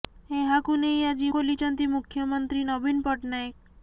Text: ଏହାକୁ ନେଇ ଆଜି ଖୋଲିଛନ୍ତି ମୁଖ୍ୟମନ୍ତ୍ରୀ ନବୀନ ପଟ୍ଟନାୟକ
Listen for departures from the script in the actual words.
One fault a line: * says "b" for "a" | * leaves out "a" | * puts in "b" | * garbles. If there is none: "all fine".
all fine